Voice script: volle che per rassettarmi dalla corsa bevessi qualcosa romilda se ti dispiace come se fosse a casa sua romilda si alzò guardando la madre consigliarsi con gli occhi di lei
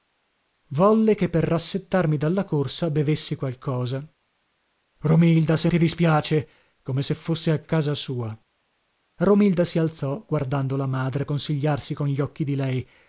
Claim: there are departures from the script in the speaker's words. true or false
false